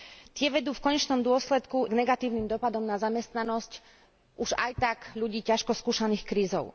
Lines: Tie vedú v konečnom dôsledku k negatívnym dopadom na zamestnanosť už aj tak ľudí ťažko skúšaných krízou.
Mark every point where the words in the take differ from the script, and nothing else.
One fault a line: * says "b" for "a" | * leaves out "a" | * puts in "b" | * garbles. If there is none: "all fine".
all fine